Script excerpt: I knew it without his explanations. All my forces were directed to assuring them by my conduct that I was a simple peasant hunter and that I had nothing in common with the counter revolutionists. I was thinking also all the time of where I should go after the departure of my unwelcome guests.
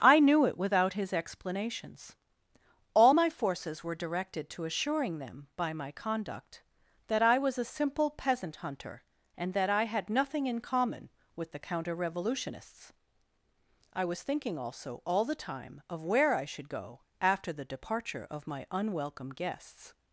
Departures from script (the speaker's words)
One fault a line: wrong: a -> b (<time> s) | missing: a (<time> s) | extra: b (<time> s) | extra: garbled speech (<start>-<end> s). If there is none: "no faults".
no faults